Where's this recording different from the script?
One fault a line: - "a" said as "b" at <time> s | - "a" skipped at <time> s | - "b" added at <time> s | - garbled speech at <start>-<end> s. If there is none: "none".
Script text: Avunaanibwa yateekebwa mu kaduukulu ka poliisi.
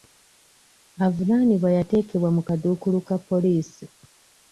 none